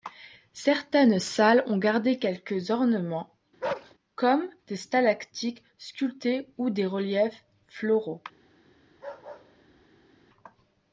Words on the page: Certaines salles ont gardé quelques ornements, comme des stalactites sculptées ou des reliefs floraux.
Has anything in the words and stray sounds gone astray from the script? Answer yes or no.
yes